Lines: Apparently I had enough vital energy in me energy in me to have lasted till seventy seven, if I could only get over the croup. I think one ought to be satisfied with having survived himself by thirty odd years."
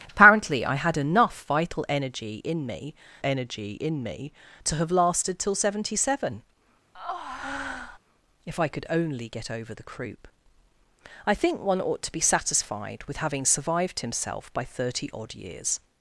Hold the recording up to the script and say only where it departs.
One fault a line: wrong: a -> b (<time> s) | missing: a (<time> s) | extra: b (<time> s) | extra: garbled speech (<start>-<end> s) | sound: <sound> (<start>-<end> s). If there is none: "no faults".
sound: breath (6.9-8.0 s)